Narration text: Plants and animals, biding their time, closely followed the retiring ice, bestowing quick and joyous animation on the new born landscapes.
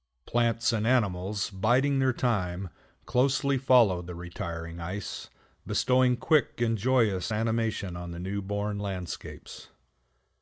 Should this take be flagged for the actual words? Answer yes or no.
no